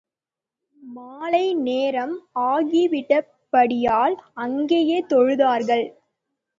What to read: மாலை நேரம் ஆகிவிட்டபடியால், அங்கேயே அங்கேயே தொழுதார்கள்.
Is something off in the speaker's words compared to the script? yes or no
yes